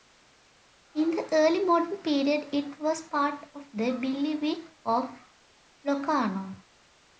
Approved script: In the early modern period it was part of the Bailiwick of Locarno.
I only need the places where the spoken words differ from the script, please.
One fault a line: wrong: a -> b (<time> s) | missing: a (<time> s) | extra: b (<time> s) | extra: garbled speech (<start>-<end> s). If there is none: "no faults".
no faults